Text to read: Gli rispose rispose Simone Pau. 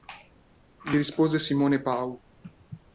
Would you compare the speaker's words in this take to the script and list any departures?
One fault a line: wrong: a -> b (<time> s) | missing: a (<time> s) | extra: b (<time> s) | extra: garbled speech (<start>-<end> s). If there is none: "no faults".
missing: rispose (1.4 s)